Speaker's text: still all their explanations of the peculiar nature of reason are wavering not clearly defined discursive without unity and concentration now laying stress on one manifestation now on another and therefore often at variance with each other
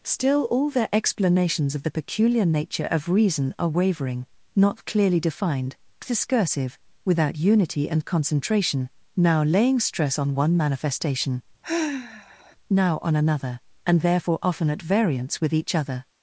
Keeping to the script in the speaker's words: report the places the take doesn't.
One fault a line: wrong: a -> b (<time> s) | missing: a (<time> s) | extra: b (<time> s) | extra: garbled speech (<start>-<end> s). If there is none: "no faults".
no faults